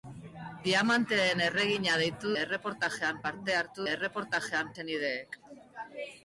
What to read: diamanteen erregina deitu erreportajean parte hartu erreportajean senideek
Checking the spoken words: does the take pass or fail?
pass